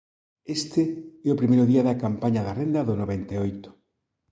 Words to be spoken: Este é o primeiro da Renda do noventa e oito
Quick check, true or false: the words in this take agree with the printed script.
false